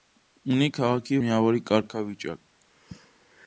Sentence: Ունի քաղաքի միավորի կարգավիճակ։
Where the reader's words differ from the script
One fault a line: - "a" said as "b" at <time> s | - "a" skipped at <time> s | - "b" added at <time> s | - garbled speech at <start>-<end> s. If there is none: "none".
none